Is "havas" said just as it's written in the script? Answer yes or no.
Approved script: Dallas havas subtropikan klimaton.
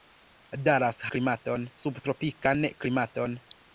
no